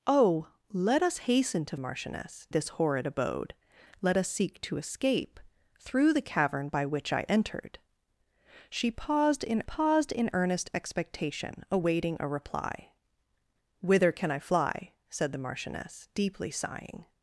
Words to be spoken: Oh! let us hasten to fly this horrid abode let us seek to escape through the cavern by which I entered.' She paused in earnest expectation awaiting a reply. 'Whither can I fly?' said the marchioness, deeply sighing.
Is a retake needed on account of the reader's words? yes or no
yes